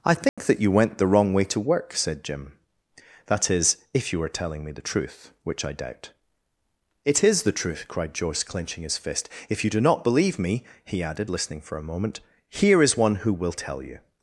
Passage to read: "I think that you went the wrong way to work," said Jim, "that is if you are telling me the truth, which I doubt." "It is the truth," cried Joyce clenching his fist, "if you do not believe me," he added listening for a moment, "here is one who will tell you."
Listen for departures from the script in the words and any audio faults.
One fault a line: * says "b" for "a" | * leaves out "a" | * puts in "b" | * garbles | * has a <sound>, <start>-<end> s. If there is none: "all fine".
* has a dropout, 0.3-0.4 s